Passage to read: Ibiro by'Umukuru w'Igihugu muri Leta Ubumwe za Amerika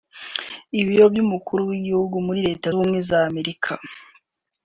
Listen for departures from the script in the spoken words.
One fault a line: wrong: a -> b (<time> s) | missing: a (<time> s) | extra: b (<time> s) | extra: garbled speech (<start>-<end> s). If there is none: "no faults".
no faults